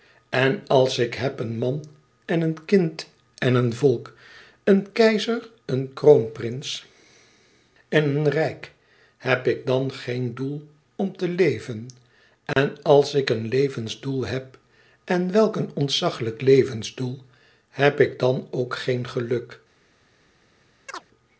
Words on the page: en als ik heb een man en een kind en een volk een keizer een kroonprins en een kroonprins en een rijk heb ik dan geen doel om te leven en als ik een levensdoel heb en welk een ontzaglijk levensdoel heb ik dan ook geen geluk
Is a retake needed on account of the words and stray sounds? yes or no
yes